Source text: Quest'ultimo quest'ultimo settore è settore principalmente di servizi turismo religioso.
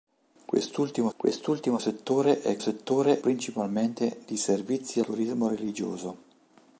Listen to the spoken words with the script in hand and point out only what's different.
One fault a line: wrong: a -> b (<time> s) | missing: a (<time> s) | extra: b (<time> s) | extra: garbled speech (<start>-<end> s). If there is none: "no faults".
no faults